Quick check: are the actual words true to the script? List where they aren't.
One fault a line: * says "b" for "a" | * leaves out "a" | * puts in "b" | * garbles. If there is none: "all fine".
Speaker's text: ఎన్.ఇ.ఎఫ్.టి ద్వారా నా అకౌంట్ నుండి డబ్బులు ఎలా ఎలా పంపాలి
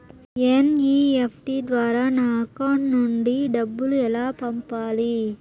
* leaves out "ఎలా"